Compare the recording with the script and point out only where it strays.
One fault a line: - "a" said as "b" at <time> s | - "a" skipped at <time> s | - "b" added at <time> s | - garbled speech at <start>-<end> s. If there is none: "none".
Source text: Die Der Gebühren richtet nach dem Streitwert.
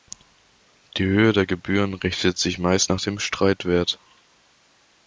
- "Höhe" added at 1.1 s
- "sich meist" added at 2.4 s